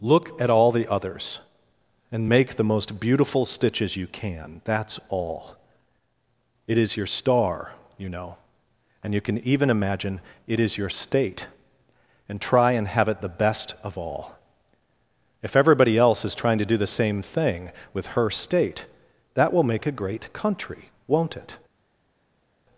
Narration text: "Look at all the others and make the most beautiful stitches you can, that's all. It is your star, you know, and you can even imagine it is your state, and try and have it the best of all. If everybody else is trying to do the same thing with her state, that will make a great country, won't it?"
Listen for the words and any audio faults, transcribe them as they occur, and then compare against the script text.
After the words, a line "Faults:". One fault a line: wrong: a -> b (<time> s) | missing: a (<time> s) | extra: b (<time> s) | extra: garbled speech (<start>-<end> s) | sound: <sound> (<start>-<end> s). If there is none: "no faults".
"Look at all the others and make the most beautiful stitches you can, that's all. It is your star, you know, and you can even imagine it is your state, and try and have it the best of all. If everybody else is trying to do the same thing with her state, that will make a great country, won't it?"
Faults:
no faults